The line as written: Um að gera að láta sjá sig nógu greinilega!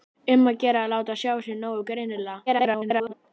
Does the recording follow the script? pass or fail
fail